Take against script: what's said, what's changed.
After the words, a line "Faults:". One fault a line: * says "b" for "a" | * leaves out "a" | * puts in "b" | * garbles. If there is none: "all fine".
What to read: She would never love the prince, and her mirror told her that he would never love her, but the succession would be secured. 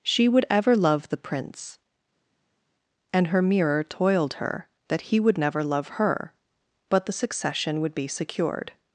She would ever love the prince, and her mirror toiled her that he would never love her, but the succession would be secured.
Faults:
* says "ever" for "never"
* says "toiled" for "told"